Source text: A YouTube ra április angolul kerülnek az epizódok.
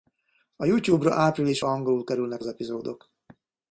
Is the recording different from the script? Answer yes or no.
no